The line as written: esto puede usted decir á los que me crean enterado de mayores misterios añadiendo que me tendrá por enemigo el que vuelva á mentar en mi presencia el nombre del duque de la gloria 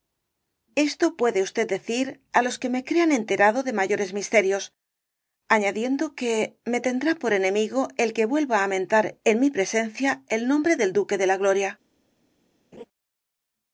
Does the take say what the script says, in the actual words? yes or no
yes